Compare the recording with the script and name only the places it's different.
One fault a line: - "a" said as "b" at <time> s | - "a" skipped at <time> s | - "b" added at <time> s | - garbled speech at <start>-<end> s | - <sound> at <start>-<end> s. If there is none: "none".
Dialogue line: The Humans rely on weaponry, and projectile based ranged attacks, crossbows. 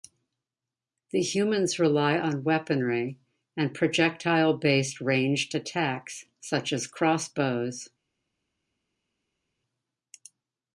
- "such as" added at 6.4 s